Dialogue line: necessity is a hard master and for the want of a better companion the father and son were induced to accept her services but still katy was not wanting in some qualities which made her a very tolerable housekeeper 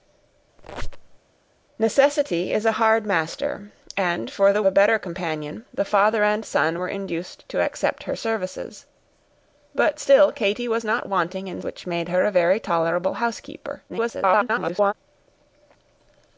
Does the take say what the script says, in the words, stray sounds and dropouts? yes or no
no